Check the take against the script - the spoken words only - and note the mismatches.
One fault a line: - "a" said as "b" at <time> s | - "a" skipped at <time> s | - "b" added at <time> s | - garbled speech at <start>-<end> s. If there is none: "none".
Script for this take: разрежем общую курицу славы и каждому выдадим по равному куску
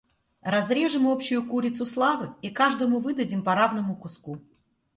none